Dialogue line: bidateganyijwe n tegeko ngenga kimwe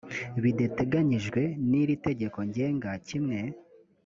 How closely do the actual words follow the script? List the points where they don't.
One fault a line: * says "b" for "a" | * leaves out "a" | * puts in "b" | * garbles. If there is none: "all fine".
* puts in "iri"